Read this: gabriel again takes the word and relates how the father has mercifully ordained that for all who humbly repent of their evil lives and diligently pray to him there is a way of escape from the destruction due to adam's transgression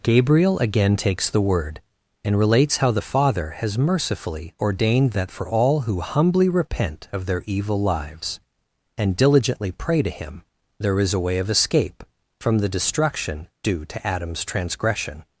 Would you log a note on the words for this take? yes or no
no